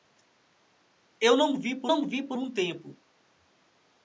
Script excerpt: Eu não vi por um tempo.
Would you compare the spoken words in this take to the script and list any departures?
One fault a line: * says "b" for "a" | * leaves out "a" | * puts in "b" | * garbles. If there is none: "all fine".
* puts in "não vi por"